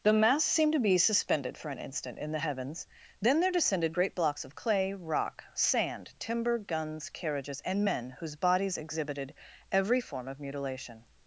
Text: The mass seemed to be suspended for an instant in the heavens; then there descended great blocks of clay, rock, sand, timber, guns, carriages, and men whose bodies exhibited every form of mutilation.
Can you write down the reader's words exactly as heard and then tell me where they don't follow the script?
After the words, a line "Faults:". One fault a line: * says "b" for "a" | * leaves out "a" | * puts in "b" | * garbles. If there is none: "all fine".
The mass seemed to be suspended for an instant in the heavens; then there descended great blocks of clay, rock, sand, timber, guns, carriages, and men whose bodies exhibited every form of mutilation.
Faults:
all fine